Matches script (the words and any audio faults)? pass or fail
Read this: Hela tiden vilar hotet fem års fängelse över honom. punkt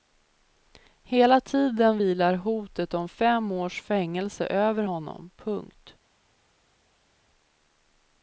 fail